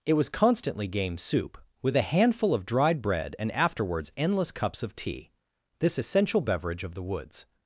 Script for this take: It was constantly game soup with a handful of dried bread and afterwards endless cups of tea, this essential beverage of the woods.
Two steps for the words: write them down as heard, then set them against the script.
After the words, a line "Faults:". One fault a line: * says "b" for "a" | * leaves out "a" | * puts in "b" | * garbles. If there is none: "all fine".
It was constantly game soup with a handful of dried bread and afterwards endless cups of tea, this essential beverage of the woods.
Faults:
all fine